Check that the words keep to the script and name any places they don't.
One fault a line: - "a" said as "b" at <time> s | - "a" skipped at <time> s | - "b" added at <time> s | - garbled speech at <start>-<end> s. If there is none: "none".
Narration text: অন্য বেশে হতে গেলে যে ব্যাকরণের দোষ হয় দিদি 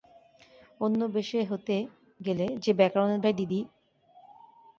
- "দোষ" skipped at 3.2 s